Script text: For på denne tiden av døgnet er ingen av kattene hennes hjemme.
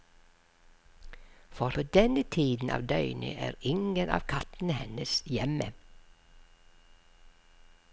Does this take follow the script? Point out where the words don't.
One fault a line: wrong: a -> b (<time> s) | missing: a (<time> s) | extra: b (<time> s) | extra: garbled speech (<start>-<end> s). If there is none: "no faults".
no faults